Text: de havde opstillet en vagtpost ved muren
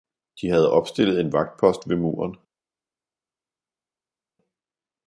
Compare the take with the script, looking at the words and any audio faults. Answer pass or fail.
pass